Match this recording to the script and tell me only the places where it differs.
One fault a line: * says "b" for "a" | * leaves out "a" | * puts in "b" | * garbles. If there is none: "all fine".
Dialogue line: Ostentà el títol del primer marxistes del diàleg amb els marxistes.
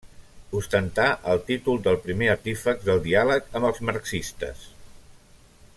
* says "artífex" for "marxistes"